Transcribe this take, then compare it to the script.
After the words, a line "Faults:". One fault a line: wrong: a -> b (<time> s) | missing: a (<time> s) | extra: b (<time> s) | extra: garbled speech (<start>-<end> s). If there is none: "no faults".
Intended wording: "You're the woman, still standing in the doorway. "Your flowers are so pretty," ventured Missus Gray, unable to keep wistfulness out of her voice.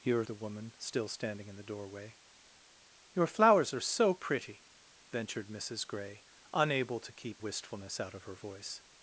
"You're the woman, still standing in the doorway. "Your flowers are so pretty," ventured Missus Gray, unable to keep wistfulness out of her voice.
Faults:
no faults